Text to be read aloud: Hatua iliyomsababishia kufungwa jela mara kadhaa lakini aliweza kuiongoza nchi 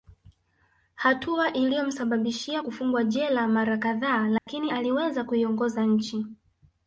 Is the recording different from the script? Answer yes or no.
no